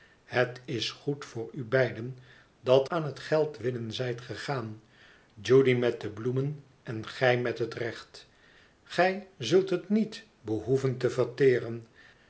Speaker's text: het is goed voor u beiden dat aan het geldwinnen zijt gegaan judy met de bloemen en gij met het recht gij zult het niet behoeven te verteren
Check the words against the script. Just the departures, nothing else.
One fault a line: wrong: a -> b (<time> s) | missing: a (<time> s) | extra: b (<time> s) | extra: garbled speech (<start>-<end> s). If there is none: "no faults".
no faults